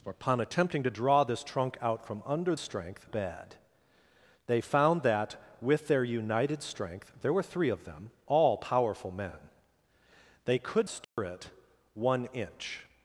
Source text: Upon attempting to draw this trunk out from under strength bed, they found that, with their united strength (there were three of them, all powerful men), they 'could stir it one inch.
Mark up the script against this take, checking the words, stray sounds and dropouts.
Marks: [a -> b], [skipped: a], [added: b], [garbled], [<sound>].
Upon attempting to draw this trunk out from under strength bed, they found that, with their united strength (there were three of them, all powerful men), they 'could stir [dropout] it one inch.